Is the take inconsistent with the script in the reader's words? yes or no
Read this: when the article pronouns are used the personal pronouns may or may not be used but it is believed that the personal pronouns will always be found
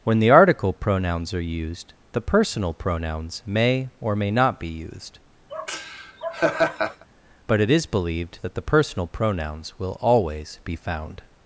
no